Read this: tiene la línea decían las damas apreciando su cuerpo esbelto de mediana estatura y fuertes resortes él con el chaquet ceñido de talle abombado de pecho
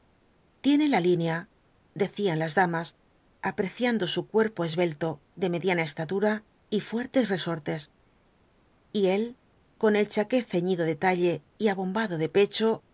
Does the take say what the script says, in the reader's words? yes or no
no